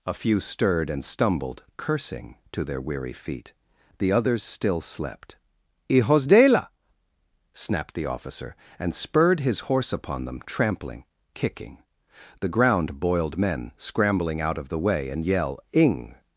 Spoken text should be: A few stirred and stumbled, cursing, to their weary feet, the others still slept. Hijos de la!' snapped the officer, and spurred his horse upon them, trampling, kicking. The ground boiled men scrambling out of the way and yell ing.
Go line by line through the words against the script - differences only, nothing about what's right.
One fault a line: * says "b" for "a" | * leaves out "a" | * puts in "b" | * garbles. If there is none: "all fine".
all fine